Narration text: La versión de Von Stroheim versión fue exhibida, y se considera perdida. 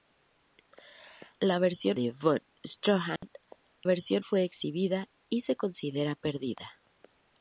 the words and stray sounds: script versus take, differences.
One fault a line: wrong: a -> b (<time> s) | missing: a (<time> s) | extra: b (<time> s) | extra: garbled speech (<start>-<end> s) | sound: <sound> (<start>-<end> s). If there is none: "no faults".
sound: dropout (3.2-3.2 s)